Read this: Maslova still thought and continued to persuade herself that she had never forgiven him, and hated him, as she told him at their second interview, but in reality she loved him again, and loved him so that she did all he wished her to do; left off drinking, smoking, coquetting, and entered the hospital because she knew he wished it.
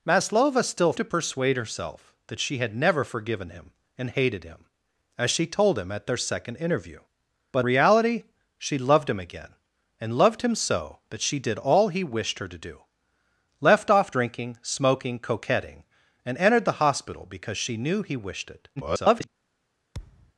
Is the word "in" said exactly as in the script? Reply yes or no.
no